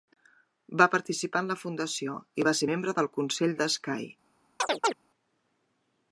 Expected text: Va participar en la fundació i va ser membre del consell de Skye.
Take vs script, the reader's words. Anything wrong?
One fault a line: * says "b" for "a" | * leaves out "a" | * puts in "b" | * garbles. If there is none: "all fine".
all fine